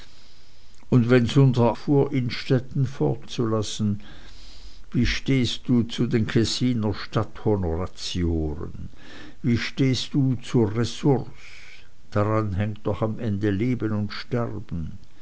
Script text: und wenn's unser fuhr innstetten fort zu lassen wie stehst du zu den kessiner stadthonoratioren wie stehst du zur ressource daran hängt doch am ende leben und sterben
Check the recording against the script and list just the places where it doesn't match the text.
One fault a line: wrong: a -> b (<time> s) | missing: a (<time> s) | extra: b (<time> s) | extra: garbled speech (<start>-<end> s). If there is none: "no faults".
no faults